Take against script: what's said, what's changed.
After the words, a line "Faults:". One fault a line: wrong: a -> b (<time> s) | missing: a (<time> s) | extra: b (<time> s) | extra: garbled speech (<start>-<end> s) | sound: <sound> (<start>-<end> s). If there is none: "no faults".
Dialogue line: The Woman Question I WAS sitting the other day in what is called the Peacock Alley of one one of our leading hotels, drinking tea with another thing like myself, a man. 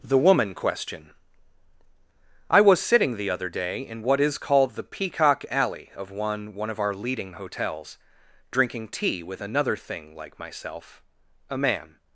The Woman Question I WAS sitting the other day in what is called the Peacock Alley of one one of our leading hotels, drinking tea with another thing like myself, a man.
Faults:
no faults